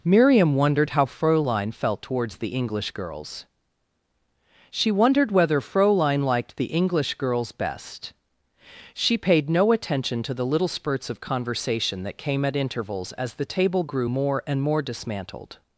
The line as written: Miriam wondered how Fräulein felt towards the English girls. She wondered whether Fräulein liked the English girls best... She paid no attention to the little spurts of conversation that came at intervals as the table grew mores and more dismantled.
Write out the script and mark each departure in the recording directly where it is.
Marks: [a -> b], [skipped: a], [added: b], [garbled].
Miriam wondered how Fräulein felt towards the English girls. She wondered whether Fräulein liked the English girls best... She paid no attention to the little spurts of conversation that came at intervals as the table grew [mores -> more] and more dismantled.